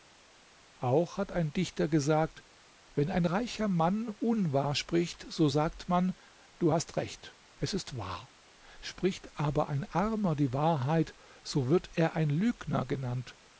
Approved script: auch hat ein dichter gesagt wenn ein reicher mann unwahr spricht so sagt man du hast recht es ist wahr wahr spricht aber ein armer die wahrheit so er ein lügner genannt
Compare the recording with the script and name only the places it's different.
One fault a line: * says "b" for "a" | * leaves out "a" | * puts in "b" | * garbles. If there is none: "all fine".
* leaves out "wahr"
* puts in "wird"